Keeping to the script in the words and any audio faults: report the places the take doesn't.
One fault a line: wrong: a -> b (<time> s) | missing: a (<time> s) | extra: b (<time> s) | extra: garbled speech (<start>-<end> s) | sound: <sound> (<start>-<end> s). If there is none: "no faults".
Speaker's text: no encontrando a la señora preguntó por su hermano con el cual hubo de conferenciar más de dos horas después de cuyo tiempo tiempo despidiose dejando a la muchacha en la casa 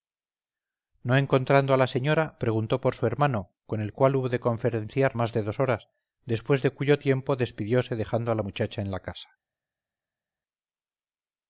missing: tiempo (7.3 s)